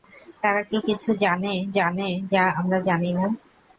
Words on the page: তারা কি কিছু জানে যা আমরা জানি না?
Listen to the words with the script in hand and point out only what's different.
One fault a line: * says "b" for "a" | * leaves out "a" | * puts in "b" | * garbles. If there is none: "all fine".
* puts in "জানে"